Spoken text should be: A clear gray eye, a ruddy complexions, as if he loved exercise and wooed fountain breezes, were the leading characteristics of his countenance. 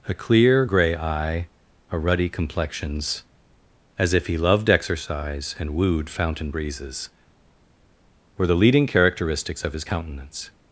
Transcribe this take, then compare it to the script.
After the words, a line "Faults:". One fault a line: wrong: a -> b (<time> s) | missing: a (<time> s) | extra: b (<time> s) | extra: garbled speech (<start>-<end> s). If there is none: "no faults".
A clear gray eye, a ruddy complexions, as if he loved exercise and wooed fountain breezes, were the leading characteristics of his countenance.
Faults:
no faults